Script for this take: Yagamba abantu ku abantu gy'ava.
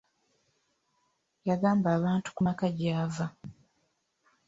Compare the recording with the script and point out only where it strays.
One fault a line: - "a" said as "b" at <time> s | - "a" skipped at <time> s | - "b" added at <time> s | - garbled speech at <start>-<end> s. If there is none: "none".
- "abantu" said as "maka" at 2.5 s